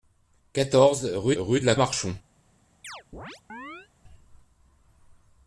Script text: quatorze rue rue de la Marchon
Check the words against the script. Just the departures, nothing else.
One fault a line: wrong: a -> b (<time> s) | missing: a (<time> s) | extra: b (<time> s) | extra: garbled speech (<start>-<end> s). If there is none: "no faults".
no faults